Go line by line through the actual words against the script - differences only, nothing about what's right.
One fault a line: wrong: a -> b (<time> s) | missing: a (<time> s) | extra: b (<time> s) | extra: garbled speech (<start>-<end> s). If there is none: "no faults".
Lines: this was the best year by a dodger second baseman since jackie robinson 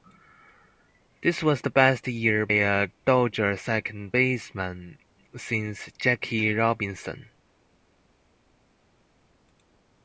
missing: by (2.5 s)